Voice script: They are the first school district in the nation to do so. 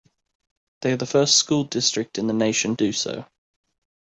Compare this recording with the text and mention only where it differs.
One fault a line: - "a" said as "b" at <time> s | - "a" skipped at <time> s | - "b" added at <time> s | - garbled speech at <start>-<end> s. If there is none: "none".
- "to" skipped at 2.7 s